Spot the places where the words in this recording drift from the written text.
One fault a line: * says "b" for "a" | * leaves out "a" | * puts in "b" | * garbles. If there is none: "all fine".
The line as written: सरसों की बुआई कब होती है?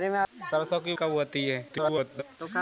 * leaves out "बुआई"
* garbles